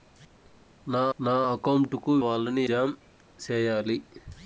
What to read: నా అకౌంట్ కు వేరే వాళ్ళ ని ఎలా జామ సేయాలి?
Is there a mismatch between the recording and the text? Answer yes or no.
yes